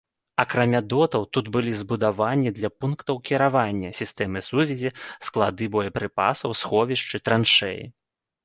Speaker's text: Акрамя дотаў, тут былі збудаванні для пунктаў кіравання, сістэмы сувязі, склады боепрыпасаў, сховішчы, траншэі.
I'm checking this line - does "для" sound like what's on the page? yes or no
yes